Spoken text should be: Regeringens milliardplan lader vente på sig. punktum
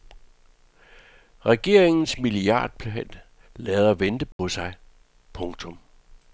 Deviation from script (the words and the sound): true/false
true